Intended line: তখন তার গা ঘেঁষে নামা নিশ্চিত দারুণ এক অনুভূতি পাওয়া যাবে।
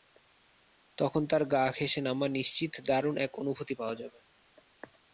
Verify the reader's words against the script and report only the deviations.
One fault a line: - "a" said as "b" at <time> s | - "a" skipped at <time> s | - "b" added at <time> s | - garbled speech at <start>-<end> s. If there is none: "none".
none